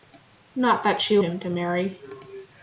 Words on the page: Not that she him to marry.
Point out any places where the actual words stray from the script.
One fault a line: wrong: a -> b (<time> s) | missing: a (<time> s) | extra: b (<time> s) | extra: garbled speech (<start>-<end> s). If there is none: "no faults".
no faults